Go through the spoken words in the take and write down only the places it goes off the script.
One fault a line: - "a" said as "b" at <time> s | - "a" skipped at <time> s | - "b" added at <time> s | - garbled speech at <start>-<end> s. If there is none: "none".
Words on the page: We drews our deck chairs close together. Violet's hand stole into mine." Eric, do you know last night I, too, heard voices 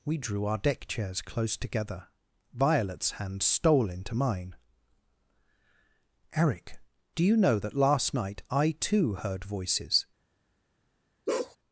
- "drews" said as "drew" at 0.2 s
- "that" added at 7.6 s